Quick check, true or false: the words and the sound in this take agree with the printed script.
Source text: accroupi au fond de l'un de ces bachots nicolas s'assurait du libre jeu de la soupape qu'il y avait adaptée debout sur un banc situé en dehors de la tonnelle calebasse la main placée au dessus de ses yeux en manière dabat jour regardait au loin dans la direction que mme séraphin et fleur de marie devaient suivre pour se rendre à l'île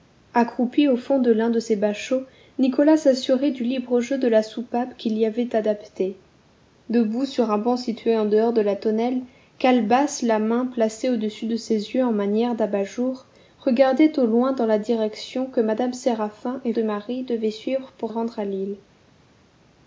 false